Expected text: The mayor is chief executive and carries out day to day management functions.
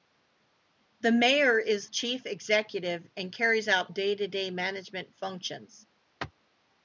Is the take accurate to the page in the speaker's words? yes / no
yes